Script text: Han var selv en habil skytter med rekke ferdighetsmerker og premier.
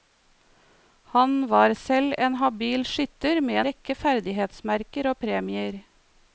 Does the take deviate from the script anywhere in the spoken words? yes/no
no